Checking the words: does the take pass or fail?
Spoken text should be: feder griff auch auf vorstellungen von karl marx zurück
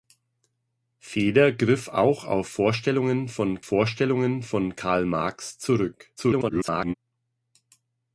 fail